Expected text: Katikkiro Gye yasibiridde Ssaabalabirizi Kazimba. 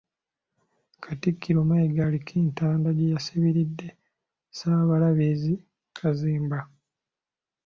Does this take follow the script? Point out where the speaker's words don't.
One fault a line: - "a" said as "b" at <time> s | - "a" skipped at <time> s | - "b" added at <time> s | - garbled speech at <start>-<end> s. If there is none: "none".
- "Mayiga aliko entanda" added at 1.7 s